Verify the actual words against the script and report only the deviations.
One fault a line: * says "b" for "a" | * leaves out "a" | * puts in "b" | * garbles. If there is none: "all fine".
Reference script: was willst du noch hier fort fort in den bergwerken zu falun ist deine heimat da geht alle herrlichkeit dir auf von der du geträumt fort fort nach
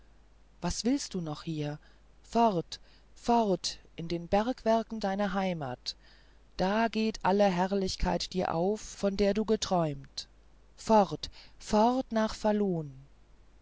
* leaves out "zu falun ist"